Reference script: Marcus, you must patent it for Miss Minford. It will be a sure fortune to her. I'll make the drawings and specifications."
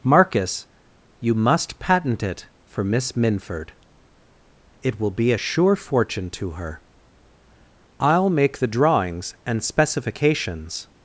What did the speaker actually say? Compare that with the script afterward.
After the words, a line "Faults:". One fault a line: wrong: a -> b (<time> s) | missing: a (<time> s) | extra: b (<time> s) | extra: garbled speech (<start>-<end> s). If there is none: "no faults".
Marcus, you must patent it for Miss Minford. It will be a sure fortune to her. I'll make the drawings and specifications."
Faults:
no faults